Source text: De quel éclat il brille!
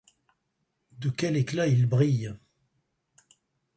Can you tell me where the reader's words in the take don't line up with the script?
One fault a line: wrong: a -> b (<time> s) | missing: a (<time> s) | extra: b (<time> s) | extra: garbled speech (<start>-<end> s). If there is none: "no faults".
no faults